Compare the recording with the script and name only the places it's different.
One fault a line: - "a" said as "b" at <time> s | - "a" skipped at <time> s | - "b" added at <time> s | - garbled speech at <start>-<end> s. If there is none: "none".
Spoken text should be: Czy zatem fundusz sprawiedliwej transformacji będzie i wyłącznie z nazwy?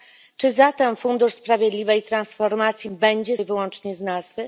none